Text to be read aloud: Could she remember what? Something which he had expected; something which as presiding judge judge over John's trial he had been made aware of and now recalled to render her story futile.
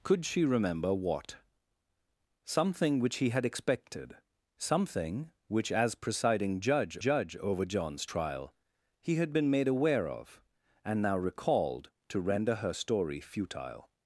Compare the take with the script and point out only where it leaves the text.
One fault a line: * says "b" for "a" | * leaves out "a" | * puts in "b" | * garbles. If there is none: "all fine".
all fine